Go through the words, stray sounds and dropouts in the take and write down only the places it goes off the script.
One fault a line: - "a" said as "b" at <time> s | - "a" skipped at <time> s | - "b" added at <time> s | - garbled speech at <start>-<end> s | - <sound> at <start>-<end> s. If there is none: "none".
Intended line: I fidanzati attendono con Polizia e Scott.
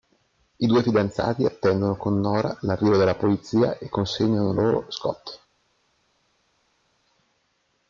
- "due" added at 0.7 s
- "Nora l'arrivo della" added at 2.2 s
- "consegnano loro" added at 3.9 s